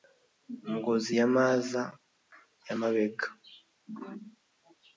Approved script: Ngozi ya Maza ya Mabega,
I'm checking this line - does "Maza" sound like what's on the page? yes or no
yes